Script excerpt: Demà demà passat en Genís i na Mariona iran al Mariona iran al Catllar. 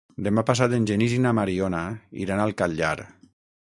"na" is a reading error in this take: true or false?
false